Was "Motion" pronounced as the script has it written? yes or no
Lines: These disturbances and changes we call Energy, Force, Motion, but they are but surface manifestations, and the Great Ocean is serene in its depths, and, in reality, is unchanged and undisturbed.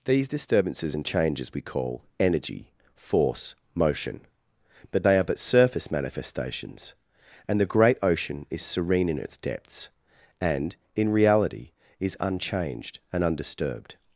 yes